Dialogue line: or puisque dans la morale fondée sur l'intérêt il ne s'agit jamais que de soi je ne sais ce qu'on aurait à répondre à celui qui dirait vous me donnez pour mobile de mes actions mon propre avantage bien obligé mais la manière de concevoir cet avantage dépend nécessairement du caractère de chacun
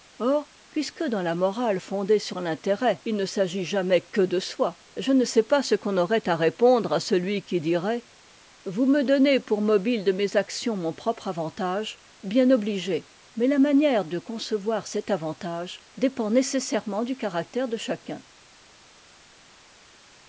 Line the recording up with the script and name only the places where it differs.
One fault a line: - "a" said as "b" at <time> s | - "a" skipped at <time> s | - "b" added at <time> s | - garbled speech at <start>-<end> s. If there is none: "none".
- "pas" added at 5.4 s